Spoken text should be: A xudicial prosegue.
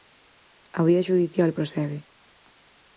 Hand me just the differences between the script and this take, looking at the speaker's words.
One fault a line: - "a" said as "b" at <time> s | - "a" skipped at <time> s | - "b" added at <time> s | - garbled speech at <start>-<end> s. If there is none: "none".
- "vía" added at 0.9 s